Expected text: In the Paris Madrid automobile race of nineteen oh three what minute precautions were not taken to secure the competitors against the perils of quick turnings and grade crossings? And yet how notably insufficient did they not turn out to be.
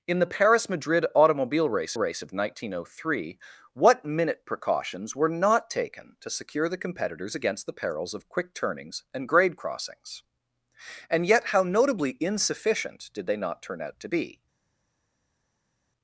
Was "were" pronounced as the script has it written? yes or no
yes